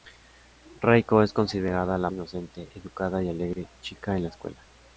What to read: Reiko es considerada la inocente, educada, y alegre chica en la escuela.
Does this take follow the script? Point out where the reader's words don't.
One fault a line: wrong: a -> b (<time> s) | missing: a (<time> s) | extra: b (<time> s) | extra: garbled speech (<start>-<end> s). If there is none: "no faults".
no faults